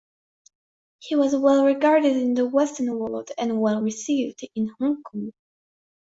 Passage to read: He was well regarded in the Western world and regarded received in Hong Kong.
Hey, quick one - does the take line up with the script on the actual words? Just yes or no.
no